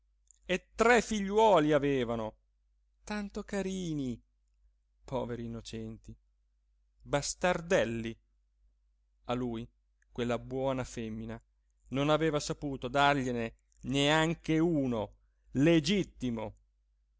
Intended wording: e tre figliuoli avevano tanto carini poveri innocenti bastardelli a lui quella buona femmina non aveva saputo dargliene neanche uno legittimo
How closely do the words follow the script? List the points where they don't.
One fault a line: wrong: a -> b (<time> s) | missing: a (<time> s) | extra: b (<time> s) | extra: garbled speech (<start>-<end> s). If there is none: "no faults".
no faults